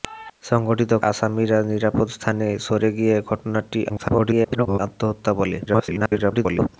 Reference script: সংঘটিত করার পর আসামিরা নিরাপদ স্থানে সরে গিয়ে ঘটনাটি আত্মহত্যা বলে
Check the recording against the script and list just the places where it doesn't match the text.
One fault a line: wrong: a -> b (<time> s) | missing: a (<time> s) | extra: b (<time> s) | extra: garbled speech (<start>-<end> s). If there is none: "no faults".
missing: করার পর (0.9 s)
extra: garbled speech (3.9-4.8 s)
extra: garbled speech (5.7-6.7 s)